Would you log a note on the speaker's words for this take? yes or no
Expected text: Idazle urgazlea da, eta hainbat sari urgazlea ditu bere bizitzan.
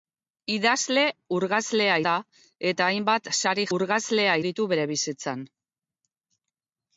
no